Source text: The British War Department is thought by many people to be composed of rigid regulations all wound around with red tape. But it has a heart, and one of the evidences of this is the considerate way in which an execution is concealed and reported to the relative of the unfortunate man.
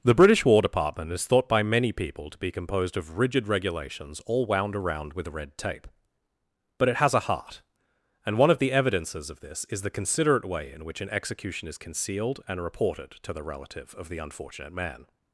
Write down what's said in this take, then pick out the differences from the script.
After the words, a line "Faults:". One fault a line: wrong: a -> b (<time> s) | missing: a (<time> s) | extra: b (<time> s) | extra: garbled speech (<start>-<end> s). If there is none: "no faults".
The British War Department is thought by many people to be composed of rigid regulations all wound around with red tape. But it has a heart, and one of the evidences of this is the considerate way in which an execution is concealed and reported to the relative of the unfortunate man.
Faults:
no faults